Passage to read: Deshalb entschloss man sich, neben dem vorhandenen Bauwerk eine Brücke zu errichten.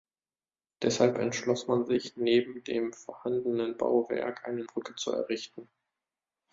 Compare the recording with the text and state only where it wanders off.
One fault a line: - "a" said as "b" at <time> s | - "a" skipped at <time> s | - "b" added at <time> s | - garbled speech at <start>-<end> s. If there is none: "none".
none